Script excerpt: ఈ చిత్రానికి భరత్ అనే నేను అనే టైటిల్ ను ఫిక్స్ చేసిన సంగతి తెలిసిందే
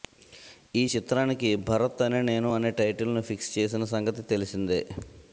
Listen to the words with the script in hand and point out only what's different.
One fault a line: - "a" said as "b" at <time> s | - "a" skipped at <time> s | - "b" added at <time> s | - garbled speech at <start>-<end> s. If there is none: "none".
none